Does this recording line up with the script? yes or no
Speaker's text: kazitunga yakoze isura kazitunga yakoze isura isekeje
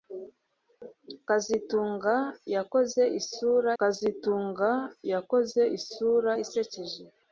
yes